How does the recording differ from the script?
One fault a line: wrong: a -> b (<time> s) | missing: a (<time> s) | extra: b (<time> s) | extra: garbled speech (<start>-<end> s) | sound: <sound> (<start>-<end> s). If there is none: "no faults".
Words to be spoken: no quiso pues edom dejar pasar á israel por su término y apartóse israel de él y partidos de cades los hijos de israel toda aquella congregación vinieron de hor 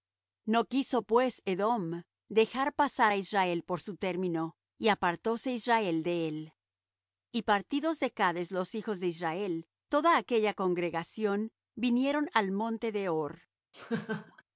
extra: al monte (12.3 s)
sound: laugh (13.7-14.4 s)